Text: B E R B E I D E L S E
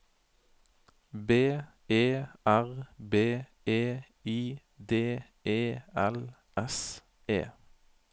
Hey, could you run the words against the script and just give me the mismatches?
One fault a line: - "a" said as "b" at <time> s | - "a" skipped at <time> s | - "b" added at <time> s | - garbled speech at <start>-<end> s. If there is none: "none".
none